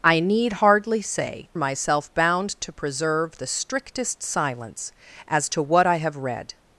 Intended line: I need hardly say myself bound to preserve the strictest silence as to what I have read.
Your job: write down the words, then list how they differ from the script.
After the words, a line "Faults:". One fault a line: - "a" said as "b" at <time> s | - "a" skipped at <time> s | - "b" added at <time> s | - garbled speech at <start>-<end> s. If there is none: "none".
I need hardly say myself bound to preserve the strictest silence as to what I have read.
Faults:
none